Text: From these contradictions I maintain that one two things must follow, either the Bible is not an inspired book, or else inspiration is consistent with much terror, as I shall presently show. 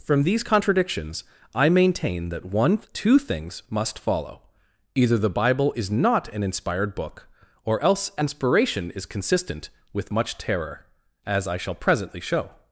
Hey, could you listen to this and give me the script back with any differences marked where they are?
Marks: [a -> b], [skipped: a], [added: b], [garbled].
From these contradictions I maintain that one two things must follow, either the Bible is not an inspired book, or else inspiration is consistent with much terror, as I shall presently show.